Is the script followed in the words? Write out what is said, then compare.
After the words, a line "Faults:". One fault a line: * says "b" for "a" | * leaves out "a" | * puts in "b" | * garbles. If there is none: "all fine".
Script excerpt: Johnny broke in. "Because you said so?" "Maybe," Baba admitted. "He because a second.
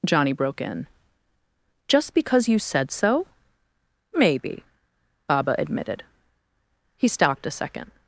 Johnny broke in. "Just because you said so?" "Maybe," Baba admitted. "He stopped a second.
Faults:
* puts in "Just"
* says "stopped" for "because"